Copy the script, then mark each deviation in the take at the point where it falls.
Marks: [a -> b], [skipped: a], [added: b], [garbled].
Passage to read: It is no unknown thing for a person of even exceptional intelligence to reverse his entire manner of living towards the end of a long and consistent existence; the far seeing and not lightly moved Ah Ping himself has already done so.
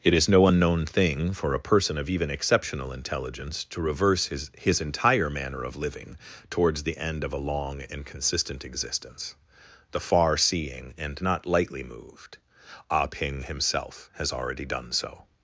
It is no unknown thing for a person of even exceptional intelligence to reverse his [added: his] entire manner of living towards the end of a long and consistent existence; the far seeing and not lightly moved Ah Ping himself has already done so.